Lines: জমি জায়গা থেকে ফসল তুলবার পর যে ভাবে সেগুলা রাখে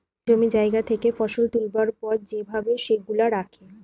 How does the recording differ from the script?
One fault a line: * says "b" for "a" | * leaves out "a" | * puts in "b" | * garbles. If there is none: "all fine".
all fine